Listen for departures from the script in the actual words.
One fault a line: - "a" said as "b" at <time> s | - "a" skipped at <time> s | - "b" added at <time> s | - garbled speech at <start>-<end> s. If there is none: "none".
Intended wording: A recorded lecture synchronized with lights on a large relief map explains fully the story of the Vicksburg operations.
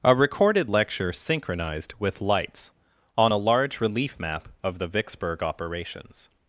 - "explains fully the story" skipped at 4.5 s